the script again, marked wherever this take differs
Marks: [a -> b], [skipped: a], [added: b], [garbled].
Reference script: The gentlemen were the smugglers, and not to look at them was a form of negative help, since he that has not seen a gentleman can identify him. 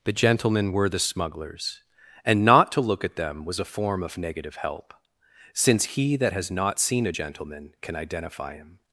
The gentlemen were the smugglers, and not to look at them was a form of negative help, since he that has not seen a gentleman can identify him.